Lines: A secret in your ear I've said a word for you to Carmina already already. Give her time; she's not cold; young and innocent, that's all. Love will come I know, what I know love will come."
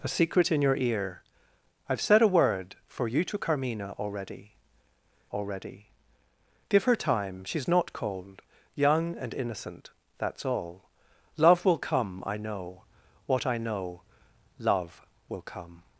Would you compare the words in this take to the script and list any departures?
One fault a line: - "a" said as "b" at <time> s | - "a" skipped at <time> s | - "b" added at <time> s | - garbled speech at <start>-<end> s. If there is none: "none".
none